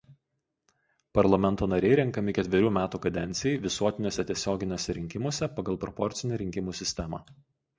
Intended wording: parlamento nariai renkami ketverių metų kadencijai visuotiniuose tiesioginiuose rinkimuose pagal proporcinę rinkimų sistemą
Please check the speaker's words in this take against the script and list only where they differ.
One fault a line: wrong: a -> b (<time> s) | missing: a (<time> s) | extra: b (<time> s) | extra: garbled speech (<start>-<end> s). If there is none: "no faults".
no faults